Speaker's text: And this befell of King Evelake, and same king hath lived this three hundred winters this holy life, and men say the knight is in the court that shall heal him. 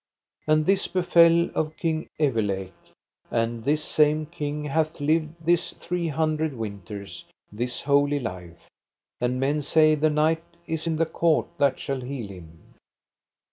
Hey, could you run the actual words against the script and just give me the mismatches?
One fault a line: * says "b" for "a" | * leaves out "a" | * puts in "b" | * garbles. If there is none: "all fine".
* puts in "this"